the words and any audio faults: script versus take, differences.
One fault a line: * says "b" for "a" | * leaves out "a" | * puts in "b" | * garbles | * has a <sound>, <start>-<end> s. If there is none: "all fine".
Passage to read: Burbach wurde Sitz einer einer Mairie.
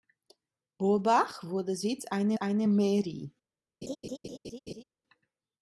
* has a laugh, 3.8-4.8 s